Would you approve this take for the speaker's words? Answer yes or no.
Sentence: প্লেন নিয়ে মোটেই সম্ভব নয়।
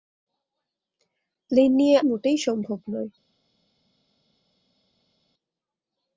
yes